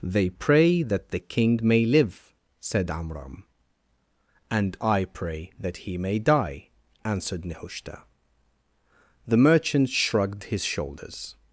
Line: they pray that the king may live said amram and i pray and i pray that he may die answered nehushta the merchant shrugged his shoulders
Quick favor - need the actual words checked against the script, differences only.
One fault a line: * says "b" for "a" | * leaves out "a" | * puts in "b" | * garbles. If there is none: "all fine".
* leaves out "and i pray"